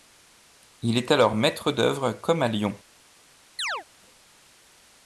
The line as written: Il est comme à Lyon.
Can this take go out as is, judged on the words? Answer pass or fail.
fail